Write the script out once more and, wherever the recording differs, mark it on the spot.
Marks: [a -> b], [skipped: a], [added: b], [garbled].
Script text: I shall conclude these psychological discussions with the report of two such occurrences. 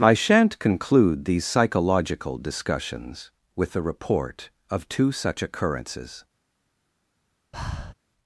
I [shall -> shan't] conclude these psychological discussions with the report of two such occurrences.